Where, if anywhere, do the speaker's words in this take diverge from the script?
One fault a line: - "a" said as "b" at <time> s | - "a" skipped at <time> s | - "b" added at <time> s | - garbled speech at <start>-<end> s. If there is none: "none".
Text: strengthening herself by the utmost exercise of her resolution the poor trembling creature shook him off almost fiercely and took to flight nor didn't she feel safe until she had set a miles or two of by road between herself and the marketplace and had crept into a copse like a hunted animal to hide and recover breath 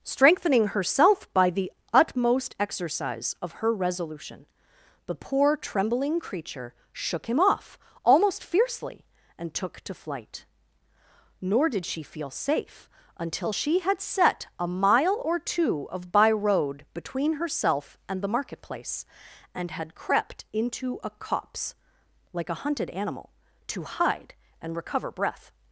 - "didn't" said as "did" at 11.7 s
- "miles" said as "mile" at 14.7 s